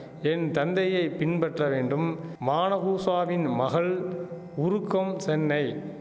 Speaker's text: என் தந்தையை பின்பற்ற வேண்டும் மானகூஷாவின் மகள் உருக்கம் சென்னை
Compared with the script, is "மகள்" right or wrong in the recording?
right